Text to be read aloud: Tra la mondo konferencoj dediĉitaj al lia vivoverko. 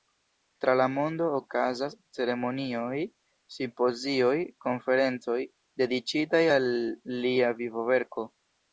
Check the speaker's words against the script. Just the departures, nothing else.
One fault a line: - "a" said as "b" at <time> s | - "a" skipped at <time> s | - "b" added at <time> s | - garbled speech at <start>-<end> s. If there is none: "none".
- "okazas ceremonioj simpozioj" added at 1.4 s